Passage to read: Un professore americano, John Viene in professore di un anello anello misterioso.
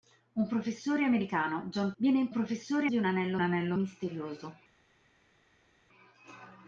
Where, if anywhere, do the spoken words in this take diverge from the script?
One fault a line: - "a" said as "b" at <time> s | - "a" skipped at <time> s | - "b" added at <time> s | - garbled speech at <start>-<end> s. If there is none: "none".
none